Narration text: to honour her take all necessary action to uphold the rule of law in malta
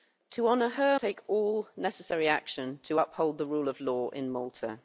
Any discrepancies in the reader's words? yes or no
no